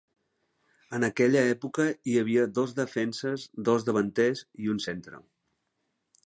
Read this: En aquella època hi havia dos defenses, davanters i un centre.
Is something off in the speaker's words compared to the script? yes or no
yes